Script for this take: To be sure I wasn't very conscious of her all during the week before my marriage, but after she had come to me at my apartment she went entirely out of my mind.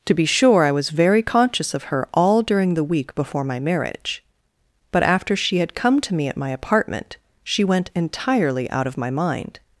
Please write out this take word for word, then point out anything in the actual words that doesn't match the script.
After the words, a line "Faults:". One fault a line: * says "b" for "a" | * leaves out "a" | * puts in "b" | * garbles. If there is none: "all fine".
To be sure I was very conscious of her all during the week before my marriage, but after she had come to me at my apartment she went entirely out of my mind.
Faults:
* says "was" for "wasn't"